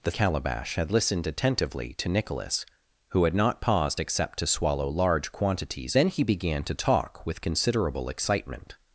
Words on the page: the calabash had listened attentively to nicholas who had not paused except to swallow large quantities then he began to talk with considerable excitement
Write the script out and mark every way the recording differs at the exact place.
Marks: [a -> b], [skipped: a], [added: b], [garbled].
the calabash had listened attentively to nicholas who had not paused except to swallow large quantities then he began to talk with considerable excitement